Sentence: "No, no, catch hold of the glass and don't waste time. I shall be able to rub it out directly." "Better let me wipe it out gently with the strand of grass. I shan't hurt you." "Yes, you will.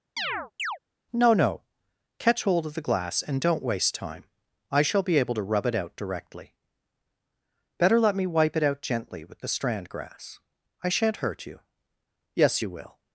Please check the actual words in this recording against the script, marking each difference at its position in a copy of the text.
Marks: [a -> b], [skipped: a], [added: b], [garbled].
"No, no, catch hold of the glass and don't waste time. I shall be able to rub it out directly." "Better let me wipe it out gently with the strand [skipped: of] grass. I shan't hurt you." "Yes, you will.